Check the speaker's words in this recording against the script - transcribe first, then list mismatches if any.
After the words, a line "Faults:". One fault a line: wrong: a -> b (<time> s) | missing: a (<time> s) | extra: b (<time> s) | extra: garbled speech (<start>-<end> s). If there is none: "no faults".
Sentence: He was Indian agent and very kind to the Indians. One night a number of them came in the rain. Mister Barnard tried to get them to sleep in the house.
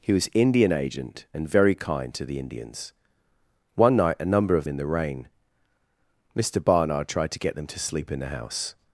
He was Indian agent and very kind to the Indians. One night a number of in the rain. Mister Barnard tried to get them to sleep in the house.
Faults:
missing: them came (4.6 s)